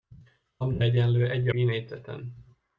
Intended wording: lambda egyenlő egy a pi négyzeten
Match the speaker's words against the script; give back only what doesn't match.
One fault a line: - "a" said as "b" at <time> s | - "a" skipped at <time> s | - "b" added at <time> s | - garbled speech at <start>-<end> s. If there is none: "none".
- "a" skipped at 1.5 s